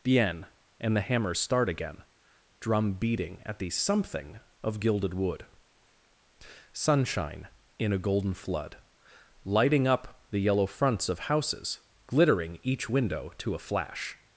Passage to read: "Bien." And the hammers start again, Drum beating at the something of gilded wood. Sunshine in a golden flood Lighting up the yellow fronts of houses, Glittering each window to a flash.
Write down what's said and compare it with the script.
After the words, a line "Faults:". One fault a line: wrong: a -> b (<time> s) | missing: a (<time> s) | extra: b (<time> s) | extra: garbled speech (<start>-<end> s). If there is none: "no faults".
"Bien." And the hammers start again, Drum beating at the something of gilded wood. Sunshine in a golden flood Lighting up the yellow fronts of houses, Glittering each window to a flash.
Faults:
no faults